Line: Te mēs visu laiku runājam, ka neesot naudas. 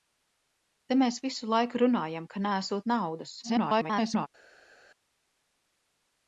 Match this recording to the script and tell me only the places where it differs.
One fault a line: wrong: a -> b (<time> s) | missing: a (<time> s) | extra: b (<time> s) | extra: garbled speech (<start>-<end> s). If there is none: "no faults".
extra: garbled speech (3.4-4.3 s)